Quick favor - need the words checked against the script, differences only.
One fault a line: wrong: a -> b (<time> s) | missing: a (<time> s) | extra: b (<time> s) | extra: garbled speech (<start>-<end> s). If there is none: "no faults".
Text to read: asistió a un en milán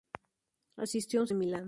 no faults